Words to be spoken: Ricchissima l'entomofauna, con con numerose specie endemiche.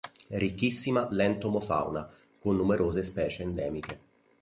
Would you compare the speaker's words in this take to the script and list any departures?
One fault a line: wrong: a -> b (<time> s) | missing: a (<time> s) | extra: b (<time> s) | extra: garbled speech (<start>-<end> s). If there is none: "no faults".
missing: con (2.5 s)